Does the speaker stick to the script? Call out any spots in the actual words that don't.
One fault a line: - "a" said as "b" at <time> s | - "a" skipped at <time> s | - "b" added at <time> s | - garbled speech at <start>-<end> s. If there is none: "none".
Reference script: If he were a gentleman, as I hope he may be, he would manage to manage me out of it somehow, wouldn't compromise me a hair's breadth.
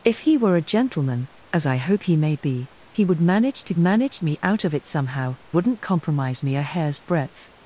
none